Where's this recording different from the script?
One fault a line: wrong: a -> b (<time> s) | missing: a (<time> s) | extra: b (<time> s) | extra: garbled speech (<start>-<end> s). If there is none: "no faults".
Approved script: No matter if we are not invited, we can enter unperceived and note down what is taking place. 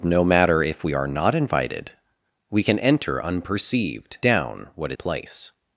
missing: and note (4.2 s)
missing: is taking (4.9 s)